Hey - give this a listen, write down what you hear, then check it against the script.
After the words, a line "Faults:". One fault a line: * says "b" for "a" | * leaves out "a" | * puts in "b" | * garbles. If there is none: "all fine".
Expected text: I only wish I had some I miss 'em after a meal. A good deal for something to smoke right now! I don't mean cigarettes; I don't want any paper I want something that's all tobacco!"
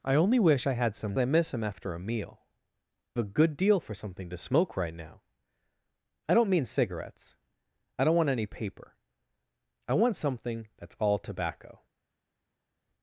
I only wish I had some I miss 'em after a meal. A good deal for something to smoke right now! I don't mean cigarettes; I don't want any paper I want something that's all tobacco!"
Faults:
all fine